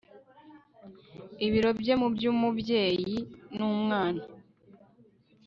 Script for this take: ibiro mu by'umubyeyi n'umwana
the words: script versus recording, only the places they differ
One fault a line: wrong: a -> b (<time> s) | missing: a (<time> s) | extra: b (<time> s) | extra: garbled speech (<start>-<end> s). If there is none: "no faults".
extra: bye (1.8 s)